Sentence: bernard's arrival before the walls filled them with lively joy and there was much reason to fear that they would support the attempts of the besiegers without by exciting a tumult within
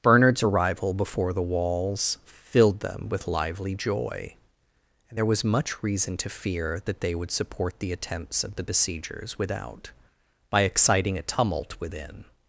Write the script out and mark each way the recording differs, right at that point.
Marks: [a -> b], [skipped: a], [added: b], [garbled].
bernard's arrival before the walls filled them with lively joy and there was much reason to fear that they would support the attempts of the besiegers without by exciting a tumult within